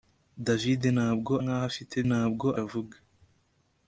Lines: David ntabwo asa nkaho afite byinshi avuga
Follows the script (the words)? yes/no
no